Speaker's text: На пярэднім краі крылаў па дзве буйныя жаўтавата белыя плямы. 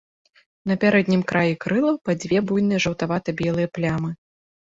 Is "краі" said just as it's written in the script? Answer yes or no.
yes